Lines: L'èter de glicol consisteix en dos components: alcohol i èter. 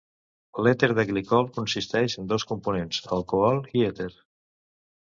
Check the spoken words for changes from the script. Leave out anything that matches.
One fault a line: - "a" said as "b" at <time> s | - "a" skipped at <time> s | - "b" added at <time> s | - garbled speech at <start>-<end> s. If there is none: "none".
none